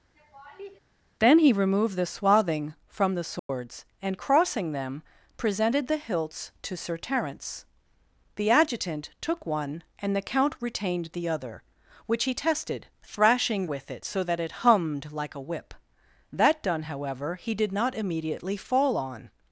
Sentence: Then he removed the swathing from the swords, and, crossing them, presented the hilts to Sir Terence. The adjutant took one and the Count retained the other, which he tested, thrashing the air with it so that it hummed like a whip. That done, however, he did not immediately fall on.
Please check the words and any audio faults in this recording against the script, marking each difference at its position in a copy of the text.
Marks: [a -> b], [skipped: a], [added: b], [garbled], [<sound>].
[laugh] Then he removed the swathing from the swords, [dropout] and, crossing them, presented the hilts to Sir Terence. The adjutant took one and the Count retained the other, which he tested, thrashing [skipped: the air] with it so that it hummed like a whip. That done, however, he did not immediately fall on.